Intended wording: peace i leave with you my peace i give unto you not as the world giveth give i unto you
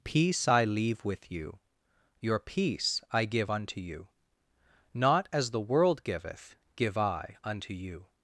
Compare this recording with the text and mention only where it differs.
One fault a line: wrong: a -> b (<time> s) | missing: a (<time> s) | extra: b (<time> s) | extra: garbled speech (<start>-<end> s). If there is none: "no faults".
wrong: my -> your (2.2 s)